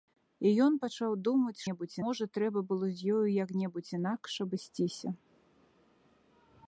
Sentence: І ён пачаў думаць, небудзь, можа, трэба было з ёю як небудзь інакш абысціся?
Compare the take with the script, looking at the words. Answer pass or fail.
pass